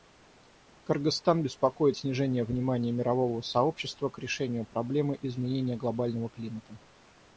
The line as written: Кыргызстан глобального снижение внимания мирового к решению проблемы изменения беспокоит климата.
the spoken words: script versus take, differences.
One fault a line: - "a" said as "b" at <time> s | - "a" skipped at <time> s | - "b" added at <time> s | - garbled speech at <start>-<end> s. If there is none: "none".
- "глобального" said as "беспокоит" at 1.4 s
- "сообщества" added at 3.4 s
- "беспокоит" said as "глобального" at 5.8 s